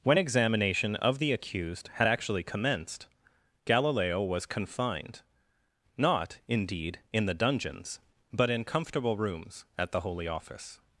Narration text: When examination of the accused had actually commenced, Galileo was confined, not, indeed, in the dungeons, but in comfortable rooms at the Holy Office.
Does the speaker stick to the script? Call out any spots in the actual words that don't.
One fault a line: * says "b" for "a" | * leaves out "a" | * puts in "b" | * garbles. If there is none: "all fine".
all fine